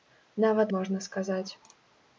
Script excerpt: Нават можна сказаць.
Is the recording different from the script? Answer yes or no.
no